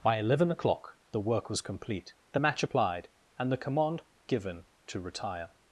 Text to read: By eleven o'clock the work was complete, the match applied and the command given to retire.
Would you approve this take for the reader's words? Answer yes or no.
yes